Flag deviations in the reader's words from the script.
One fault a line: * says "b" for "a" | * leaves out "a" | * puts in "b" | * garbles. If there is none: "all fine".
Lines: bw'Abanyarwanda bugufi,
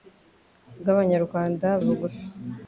all fine